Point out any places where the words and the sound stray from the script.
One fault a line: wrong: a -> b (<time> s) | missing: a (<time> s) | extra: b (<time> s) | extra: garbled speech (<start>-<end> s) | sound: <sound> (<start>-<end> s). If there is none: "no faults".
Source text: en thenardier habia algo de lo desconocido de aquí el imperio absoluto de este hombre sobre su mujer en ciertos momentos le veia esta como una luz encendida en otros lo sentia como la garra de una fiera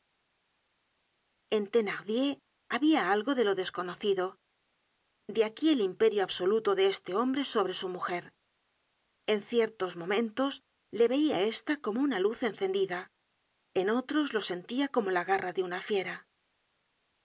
no faults